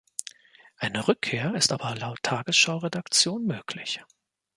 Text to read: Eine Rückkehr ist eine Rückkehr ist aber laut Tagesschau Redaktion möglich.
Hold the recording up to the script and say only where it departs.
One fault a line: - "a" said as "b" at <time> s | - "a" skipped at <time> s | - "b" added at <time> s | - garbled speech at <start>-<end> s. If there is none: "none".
- "eine Rückkehr ist" skipped at 1.7 s